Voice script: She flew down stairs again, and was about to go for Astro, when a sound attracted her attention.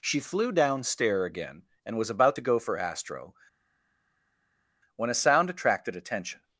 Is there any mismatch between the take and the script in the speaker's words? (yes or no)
yes